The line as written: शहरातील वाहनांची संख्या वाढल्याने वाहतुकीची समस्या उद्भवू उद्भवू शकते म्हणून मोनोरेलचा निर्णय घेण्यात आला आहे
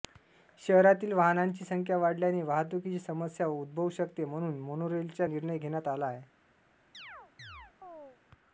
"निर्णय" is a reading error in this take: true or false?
false